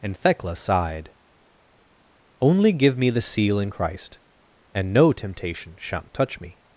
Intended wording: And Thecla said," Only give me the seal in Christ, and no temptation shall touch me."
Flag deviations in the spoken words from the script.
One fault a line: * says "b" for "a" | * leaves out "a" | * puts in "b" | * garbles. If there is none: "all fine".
* says "sighed" for "said"
* says "shan't" for "shall"